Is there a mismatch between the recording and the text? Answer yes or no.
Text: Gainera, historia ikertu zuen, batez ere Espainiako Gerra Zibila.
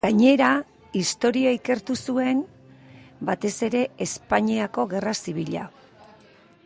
no